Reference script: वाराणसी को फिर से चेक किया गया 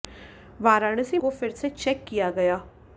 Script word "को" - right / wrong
right